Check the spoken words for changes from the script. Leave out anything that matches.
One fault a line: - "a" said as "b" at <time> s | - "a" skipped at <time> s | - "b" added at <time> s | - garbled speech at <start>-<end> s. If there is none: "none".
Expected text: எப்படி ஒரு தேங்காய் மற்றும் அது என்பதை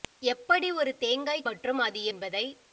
none